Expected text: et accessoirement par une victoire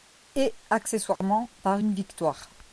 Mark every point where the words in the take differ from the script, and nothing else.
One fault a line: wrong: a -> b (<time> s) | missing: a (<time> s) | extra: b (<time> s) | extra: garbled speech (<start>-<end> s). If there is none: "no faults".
no faults